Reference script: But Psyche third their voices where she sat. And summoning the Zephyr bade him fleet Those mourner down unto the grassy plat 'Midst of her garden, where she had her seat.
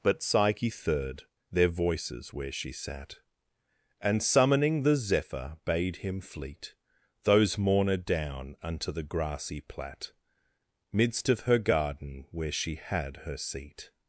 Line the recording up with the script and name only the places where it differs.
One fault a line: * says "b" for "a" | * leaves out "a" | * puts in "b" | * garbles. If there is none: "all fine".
all fine